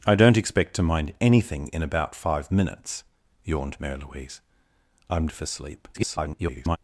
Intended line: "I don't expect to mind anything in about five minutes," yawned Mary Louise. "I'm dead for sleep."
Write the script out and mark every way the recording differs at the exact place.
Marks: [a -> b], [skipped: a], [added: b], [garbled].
"I don't expect to mind anything in about five minutes," yawned Mary Louise. "I'm [skipped: dead] for sleep." [garbled]